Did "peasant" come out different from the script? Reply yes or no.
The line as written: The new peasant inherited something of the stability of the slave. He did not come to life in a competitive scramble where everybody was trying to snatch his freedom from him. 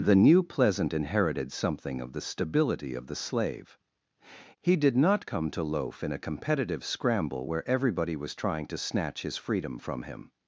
yes